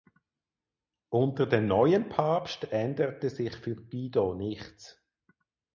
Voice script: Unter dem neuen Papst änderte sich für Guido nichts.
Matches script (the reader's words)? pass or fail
pass